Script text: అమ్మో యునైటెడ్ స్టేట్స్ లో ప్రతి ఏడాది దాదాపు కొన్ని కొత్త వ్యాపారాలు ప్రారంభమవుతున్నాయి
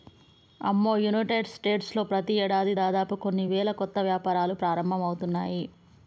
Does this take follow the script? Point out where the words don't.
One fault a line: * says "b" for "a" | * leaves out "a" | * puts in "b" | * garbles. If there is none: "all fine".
* puts in "వేల"